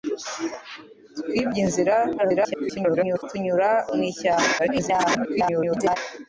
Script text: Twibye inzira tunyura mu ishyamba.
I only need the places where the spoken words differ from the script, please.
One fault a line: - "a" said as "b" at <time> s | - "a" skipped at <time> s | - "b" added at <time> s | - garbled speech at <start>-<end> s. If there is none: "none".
- garbled speech at 2.2-3.2 s
- garbled speech at 4.6-6.0 s